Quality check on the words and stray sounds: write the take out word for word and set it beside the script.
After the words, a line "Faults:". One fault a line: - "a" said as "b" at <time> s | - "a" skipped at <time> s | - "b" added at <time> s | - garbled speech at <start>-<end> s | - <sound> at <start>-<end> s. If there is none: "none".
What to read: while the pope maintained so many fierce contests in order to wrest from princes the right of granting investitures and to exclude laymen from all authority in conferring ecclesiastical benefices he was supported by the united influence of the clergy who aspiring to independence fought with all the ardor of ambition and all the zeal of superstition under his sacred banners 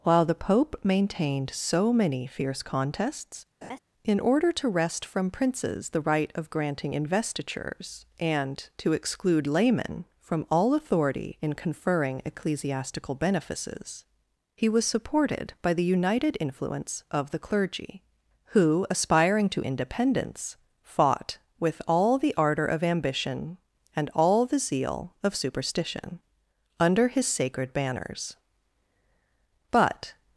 while the pope maintained so many fierce contests in order to wrest from princes the right of granting investitures and to exclude laymen from all authority in conferring ecclesiastical benefices he was supported by the united influence of the clergy who aspiring to independence fought with all the ardor of ambition and all the zeal of superstition under his sacred banners but
Faults:
- laugh at 3.6-3.8 s
- "but" added at 29.7 s